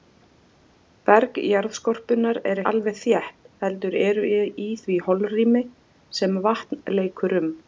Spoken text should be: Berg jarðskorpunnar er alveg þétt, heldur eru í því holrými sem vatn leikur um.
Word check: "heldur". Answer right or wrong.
right